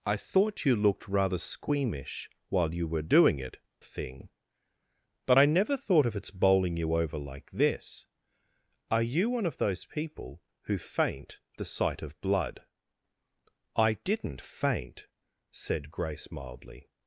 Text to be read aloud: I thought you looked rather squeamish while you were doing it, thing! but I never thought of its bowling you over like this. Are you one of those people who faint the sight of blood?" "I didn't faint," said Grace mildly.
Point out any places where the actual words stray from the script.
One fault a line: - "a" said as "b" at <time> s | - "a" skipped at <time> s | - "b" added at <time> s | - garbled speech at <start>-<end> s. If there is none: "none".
none